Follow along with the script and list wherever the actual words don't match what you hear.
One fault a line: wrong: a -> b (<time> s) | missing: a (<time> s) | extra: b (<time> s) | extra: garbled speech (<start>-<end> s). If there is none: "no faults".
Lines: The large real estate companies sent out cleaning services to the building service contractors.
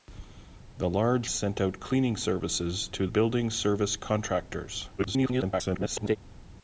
missing: real estate companies (1.3 s)
missing: the (3.1 s)
extra: garbled speech (5.0-6.2 s)